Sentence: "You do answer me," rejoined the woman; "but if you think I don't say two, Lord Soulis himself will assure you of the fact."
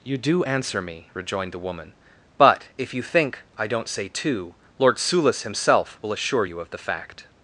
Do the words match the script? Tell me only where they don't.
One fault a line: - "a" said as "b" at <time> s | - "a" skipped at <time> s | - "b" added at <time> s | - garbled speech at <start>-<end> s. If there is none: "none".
none